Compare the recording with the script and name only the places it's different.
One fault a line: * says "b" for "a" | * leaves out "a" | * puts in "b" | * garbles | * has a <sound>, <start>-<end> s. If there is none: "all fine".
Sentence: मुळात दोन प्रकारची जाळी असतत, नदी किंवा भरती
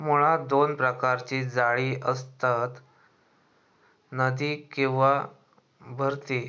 all fine